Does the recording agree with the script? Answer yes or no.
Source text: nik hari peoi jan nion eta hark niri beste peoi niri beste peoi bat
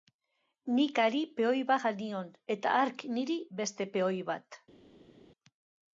no